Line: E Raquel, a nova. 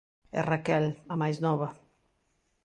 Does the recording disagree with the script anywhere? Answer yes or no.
yes